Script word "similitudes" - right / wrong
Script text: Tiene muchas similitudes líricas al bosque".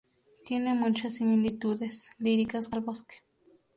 right